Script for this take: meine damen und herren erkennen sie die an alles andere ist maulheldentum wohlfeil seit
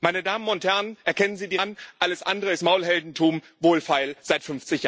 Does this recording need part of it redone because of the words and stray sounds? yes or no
no